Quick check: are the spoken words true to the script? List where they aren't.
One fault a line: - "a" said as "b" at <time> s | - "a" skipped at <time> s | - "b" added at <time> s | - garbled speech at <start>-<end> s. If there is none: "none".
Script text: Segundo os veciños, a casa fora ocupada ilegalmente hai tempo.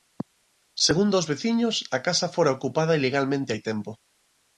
none